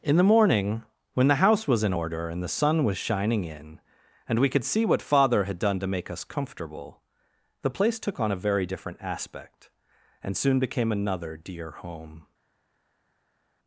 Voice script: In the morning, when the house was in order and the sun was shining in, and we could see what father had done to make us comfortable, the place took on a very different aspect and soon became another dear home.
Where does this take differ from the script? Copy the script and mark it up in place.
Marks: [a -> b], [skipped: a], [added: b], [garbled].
In the morning, when the house was in order and the sun was shining in, and we could see what father had done to make us comfortable, the place took on a very different aspect and soon became another dear home.